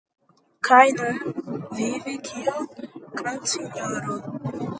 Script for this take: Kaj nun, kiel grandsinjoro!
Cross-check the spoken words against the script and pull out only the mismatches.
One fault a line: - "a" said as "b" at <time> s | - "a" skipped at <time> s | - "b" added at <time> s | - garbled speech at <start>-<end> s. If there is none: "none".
- "vivi" added at 1.8 s